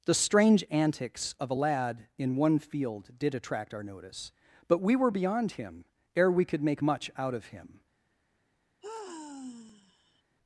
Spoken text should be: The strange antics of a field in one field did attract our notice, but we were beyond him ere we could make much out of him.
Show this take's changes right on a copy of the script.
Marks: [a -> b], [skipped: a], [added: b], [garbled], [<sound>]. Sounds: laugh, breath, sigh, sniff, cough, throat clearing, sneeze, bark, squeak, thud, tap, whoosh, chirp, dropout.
The strange antics of a [field -> lad] in one field did attract our notice, but we were beyond him ere we could make much out of him. [sigh]